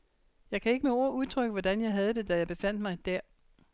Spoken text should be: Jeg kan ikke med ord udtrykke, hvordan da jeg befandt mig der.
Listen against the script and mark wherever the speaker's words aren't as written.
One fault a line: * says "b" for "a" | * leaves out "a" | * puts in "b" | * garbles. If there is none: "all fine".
* puts in "jeg havde det"